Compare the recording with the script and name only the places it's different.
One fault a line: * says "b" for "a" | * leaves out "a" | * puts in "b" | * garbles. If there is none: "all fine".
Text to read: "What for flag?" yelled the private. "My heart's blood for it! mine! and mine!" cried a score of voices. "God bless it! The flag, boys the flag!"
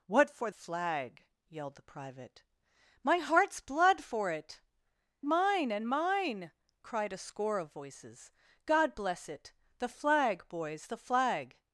all fine